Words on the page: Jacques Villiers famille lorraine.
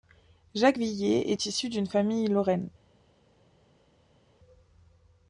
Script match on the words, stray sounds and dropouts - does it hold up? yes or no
no